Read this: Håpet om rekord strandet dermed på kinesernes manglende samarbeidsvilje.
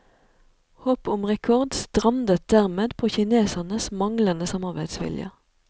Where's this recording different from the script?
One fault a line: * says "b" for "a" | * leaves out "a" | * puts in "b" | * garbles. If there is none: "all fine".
all fine